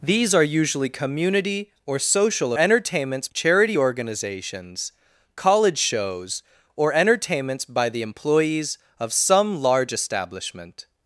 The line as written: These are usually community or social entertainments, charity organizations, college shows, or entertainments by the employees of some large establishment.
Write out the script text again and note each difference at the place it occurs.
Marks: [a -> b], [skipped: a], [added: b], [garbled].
These are usually community or social entertainments, charity organizations, college shows, or entertainments by the employees of some large establishment.